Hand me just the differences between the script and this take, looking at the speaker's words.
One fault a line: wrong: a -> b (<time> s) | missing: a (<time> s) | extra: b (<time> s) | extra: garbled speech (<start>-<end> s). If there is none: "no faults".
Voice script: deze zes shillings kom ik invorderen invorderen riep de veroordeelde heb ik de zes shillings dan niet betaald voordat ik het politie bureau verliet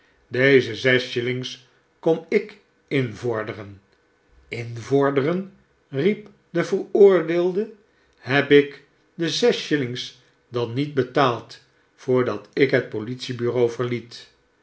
no faults